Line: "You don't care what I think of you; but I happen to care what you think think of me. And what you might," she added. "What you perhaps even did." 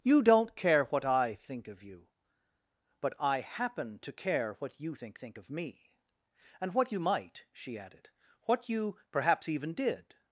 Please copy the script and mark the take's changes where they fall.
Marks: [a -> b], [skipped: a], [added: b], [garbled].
"You don't care what I think of you; but I happen to care what you think think of me. And what you might," she added. "What you perhaps even did."